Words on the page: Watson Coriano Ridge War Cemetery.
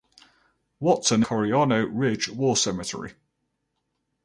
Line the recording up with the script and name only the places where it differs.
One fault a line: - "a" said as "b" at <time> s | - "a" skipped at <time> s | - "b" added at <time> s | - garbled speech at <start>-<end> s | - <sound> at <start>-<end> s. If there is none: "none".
none